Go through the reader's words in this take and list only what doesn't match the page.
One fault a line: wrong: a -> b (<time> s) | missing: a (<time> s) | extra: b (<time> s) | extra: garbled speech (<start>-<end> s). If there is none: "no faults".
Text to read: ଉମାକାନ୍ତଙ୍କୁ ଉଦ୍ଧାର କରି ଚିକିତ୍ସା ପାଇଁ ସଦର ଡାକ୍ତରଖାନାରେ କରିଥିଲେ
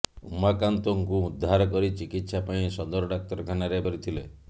no faults